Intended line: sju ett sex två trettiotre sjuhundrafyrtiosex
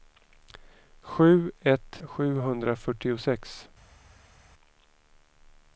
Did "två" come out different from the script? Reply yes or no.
yes